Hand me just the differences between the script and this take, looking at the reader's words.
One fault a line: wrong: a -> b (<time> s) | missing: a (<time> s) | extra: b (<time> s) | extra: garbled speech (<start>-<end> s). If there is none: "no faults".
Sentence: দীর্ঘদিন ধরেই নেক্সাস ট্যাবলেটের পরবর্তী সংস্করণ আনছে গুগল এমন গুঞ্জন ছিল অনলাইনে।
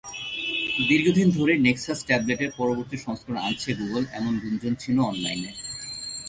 no faults